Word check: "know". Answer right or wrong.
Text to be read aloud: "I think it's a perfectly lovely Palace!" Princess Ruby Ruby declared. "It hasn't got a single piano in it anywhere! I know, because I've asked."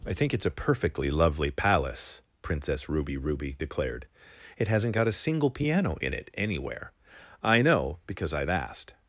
right